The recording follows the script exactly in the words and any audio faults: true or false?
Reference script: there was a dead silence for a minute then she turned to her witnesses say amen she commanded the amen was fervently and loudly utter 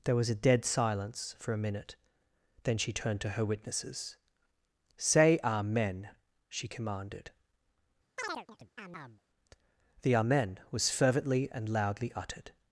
false